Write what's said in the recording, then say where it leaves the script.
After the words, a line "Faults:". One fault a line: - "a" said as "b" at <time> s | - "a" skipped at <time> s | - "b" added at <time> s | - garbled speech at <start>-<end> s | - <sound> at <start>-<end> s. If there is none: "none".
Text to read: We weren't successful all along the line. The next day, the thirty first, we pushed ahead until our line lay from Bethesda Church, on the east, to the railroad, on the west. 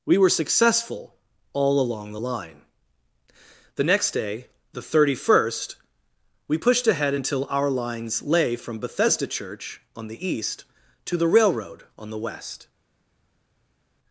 We were successful all along the line. The next day, the thirty first, we pushed ahead until our lines lay from Bethesda Church, on the east, to the railroad, on the west.
Faults:
- "weren't" said as "were" at 0.2 s
- "line" said as "lines" at 7.7 s